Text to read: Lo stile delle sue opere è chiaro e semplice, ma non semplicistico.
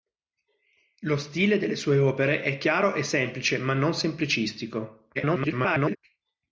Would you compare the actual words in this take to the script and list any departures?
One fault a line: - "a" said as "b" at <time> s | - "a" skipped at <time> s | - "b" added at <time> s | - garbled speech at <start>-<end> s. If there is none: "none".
- garbled speech at 5.1-6.0 s